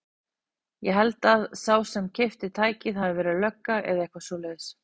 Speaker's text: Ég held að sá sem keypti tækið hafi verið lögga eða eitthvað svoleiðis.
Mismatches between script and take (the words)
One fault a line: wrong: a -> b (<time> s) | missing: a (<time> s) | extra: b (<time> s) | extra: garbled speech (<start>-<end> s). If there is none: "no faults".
no faults